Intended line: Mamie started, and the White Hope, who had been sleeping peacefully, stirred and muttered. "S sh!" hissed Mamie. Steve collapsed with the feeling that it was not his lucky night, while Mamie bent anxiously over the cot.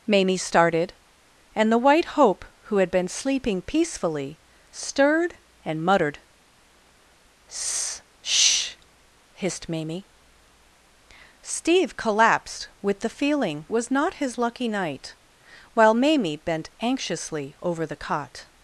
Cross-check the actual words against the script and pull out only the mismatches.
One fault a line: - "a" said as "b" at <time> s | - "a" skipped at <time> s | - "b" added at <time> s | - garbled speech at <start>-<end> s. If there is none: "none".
- "that it" skipped at 13.7 s